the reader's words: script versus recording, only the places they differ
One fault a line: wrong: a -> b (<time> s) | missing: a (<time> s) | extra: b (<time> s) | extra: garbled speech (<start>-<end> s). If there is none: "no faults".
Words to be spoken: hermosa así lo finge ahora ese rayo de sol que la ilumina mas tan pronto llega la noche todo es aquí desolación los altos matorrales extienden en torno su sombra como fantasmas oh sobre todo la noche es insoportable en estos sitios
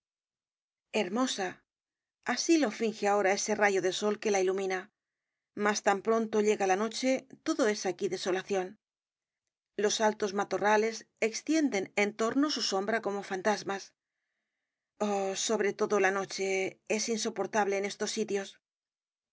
no faults